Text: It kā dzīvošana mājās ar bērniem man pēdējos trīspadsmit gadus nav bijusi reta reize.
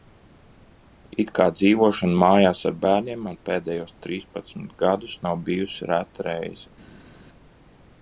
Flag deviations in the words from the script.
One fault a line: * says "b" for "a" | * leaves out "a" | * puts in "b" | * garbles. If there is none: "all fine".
all fine